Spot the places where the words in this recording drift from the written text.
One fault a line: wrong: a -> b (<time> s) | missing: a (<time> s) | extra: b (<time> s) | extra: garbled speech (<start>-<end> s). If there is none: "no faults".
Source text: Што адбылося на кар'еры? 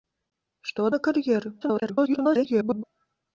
missing: адбылося (0.9 s)
extra: garbled speech (1.6-2.8 s)